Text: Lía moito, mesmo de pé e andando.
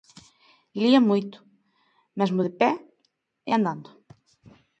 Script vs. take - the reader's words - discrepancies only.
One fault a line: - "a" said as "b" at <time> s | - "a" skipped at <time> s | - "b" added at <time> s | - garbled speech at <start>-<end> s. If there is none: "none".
none